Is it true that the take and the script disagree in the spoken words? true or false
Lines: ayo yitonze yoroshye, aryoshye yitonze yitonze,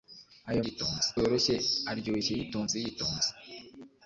false